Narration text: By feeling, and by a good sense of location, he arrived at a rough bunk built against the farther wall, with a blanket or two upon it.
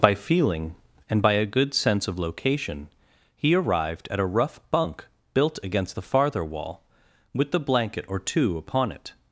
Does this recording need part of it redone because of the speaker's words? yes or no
yes